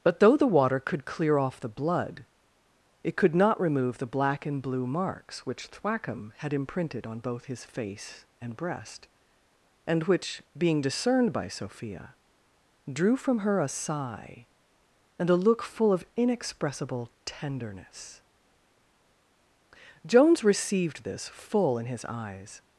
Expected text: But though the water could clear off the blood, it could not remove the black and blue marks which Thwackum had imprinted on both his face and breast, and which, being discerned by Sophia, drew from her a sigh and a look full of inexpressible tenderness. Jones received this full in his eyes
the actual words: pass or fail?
pass